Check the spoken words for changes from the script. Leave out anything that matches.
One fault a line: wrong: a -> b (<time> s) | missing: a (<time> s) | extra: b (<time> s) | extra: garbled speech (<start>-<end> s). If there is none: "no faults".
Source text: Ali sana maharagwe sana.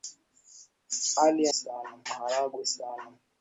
no faults